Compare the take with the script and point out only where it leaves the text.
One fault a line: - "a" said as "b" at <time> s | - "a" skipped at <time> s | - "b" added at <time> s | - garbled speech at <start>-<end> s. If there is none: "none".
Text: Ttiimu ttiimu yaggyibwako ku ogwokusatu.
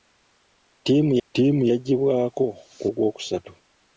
none